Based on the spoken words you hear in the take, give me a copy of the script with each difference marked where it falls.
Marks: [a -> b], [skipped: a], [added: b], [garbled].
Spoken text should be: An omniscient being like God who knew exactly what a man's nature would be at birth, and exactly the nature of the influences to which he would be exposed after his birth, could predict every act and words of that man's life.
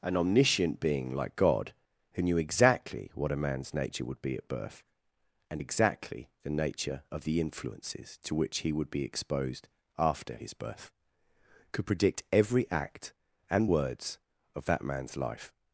An omniscient being like God who knew exactly what a man's nature would be at birth, and exactly the nature of the influences to which he would be exposed after his birth, could predict every act and words of that man's life.